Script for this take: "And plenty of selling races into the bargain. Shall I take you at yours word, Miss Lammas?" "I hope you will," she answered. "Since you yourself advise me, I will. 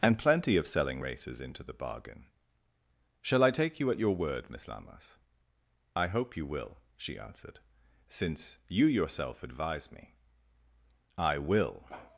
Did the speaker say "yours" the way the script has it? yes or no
no